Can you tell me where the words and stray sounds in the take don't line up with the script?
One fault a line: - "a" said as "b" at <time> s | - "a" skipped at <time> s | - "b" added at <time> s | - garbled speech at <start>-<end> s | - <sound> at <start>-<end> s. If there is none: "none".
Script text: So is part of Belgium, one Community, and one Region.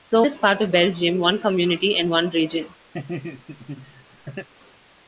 - laugh at 2.9-4.5 s